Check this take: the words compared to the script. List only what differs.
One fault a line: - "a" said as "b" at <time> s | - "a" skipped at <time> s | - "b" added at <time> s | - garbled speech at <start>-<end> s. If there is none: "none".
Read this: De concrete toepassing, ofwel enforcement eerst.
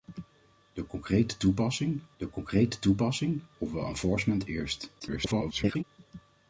- "de concrete toepassing" added at 2.2 s
- garbled speech at 5.0-5.8 s